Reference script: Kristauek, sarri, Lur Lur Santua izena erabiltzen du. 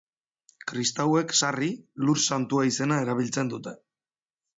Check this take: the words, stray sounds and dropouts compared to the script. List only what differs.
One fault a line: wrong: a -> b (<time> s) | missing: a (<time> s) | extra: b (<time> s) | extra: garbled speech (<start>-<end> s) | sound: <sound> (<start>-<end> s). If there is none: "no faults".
missing: Lur (2.2 s)
wrong: du -> dute (3.6 s)